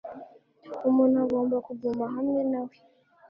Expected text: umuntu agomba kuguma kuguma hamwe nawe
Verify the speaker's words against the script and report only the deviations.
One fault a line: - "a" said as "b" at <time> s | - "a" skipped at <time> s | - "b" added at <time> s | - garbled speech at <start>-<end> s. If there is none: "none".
- "kuguma" skipped at 2.0 s